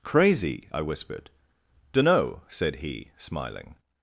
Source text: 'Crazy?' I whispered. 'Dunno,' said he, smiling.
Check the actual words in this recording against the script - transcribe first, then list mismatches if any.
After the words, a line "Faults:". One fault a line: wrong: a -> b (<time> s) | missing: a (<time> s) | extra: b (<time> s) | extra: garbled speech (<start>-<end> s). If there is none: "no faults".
'Crazy?' I whispered. 'Dunno,' said he, smiling.
Faults:
no faults